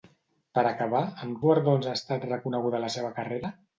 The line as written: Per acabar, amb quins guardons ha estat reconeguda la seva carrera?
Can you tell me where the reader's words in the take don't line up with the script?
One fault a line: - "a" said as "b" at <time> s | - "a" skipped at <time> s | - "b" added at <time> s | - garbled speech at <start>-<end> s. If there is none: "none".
- "quins" skipped at 1.4 s